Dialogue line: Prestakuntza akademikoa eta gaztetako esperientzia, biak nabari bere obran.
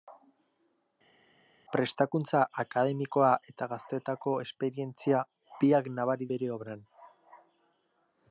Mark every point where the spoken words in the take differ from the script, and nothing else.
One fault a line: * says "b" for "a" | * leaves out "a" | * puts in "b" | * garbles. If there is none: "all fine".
all fine